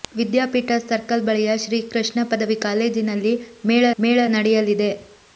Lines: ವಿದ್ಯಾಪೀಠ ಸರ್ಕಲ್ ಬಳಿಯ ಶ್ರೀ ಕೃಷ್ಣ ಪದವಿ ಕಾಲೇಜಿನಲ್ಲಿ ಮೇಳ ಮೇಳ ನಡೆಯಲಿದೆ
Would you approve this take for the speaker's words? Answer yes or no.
yes